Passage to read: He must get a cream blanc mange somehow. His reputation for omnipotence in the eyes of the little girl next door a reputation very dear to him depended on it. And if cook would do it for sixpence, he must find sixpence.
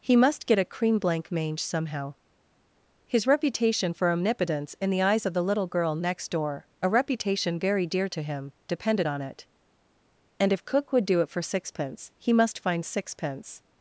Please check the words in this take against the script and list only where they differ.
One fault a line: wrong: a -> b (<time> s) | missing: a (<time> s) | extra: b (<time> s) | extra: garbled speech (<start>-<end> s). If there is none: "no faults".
no faults